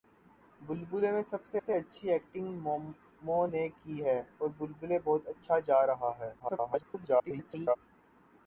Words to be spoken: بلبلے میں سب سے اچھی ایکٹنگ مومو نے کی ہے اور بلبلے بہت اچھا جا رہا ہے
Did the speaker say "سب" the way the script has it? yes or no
yes